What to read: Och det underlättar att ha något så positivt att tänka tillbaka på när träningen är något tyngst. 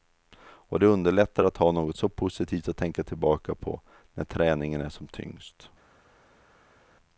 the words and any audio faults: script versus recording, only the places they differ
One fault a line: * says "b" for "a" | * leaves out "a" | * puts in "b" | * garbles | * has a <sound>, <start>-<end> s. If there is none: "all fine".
* says "som" for "något"